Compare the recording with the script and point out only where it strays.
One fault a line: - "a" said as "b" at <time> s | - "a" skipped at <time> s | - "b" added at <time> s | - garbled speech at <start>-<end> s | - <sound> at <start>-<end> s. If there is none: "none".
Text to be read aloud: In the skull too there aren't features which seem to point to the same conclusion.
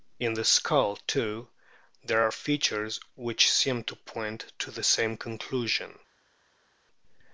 - "aren't" said as "are" at 2.2 s